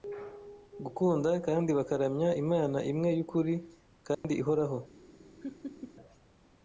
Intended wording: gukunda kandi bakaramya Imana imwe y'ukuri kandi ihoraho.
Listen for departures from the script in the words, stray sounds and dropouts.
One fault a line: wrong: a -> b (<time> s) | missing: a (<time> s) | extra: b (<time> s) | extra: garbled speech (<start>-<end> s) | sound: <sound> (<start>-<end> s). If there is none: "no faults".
sound: dropout (4.1-4.2 s)
sound: laugh (5.4-5.9 s)